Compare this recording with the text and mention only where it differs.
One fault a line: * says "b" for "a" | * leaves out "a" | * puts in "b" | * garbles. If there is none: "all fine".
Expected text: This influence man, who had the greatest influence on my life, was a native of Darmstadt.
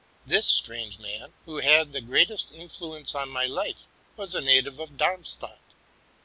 * says "strange" for "influence"